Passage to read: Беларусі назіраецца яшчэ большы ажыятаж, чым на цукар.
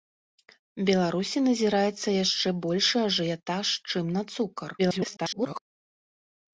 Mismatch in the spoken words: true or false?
true